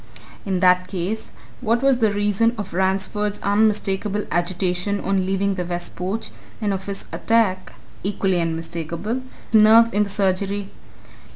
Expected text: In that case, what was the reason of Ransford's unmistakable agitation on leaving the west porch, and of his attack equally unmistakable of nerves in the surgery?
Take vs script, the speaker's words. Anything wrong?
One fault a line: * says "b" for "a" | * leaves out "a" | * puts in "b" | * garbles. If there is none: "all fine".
* leaves out "of"